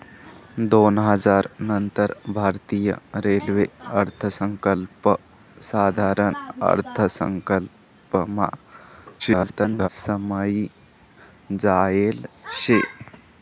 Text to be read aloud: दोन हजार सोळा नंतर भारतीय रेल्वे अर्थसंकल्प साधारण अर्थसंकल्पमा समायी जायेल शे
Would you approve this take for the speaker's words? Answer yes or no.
no